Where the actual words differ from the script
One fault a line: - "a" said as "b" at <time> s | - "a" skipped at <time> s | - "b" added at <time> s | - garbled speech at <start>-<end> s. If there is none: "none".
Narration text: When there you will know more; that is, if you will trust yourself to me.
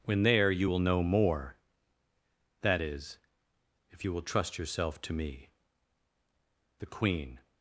- "The queen" added at 6.8 s